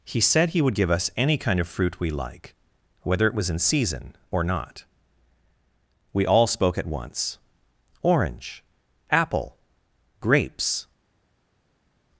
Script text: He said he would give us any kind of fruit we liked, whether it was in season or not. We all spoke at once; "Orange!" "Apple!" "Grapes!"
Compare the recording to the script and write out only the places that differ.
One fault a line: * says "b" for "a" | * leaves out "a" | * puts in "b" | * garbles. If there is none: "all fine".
* says "like" for "liked"